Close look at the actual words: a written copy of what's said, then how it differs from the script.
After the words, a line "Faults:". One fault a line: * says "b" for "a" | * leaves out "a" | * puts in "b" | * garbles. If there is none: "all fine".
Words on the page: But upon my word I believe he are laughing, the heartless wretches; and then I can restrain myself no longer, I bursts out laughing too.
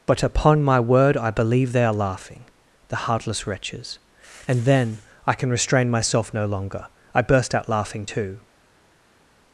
But upon my word I believe they are laughing, the heartless wretches; and then I can restrain myself no longer, I burst out laughing too.
Faults:
* says "they" for "he"
* says "burst" for "bursts"